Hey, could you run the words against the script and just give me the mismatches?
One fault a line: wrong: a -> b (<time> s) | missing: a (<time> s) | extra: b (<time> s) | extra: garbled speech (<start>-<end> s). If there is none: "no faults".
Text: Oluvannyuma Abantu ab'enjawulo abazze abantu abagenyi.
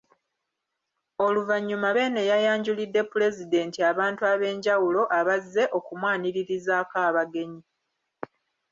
extra: Beene yayanjulidde Pulezidenti (2.0 s)
wrong: abantu -> okumwaniririzaako (5.8 s)